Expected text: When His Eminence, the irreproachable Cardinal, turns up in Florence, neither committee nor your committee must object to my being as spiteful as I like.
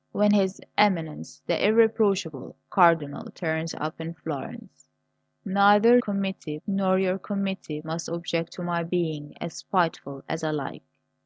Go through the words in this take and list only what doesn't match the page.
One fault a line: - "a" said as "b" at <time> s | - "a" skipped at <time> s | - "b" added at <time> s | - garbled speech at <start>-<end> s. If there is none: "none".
none